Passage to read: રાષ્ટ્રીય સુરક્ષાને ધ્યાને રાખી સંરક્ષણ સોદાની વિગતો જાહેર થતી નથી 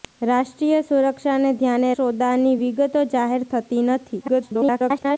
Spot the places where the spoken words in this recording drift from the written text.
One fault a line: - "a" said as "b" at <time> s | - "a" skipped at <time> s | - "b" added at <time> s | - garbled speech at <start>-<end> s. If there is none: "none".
- "રાખી સંરક્ષણ" skipped at 1.9 s
- garbled speech at 4.2-5.2 s